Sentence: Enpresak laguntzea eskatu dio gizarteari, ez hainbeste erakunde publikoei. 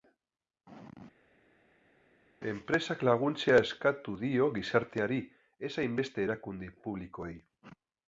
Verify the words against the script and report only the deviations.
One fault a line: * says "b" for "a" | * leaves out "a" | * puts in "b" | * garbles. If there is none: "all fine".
all fine